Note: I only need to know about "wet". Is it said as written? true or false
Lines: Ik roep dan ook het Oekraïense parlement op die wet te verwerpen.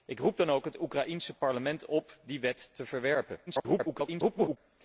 true